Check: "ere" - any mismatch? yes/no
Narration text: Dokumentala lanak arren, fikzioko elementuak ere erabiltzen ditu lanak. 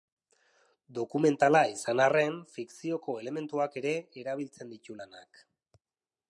no